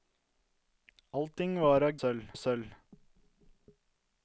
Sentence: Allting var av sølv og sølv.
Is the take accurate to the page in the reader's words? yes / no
yes